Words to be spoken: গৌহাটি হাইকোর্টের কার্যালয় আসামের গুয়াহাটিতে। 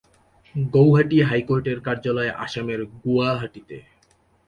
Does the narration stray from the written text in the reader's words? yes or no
no